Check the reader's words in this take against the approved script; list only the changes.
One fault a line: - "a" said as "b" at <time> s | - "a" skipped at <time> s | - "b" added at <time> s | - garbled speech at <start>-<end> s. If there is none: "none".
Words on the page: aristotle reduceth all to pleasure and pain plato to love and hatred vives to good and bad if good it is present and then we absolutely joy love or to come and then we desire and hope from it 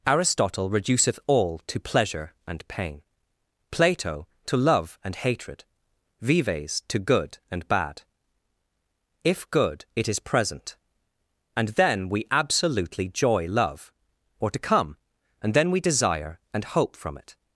none